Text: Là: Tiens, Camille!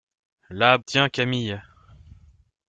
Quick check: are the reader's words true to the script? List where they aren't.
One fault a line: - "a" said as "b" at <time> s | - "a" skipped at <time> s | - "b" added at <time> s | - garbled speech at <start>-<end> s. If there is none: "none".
none